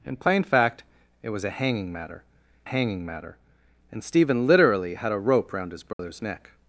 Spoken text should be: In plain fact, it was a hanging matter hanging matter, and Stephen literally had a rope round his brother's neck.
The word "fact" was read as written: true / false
true